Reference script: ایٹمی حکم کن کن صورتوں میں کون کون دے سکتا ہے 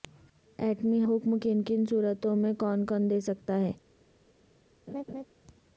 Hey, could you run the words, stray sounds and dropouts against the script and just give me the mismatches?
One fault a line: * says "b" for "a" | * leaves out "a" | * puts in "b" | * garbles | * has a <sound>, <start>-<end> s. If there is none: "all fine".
* has a laugh, 4.9-5.3 s